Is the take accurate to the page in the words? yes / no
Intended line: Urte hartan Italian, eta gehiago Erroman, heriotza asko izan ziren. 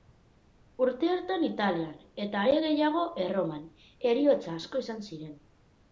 no